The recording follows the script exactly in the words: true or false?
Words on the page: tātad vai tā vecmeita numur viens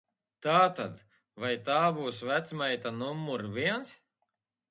false